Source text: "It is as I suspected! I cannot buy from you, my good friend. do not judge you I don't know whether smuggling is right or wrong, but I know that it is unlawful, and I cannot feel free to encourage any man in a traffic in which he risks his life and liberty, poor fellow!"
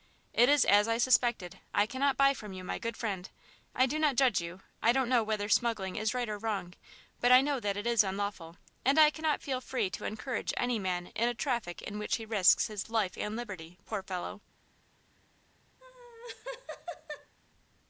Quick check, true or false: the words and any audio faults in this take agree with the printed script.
false